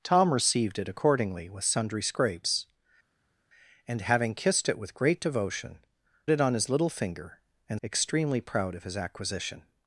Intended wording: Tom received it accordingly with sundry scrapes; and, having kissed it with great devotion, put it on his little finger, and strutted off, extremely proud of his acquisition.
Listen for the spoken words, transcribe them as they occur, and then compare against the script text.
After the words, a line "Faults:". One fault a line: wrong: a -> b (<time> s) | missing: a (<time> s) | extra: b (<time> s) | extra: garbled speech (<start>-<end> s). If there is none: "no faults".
Tom received it accordingly with sundry scrapes; and, having kissed it with great devotion, it on his little finger, and extremely proud of his acquisition.
Faults:
missing: put (5.8 s)
missing: strutted off (7.8 s)